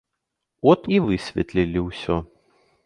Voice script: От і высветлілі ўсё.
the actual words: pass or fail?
pass